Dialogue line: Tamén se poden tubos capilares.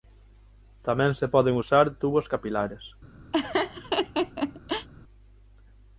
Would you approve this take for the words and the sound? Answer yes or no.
no